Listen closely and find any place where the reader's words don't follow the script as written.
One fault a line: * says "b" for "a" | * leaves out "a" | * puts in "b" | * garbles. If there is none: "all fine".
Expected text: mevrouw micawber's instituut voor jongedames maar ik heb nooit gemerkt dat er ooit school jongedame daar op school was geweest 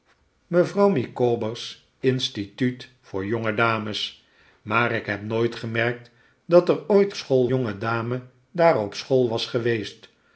all fine